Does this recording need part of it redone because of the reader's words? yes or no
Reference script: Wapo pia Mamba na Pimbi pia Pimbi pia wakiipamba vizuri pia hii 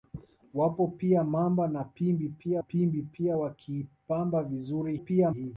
no